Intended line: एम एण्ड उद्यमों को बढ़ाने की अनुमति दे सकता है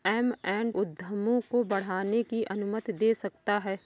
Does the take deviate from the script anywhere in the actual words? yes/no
no